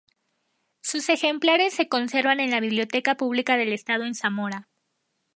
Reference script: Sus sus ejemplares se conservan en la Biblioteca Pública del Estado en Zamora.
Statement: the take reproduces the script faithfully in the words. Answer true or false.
false